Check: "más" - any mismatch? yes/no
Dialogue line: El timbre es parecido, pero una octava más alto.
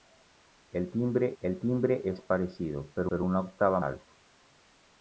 yes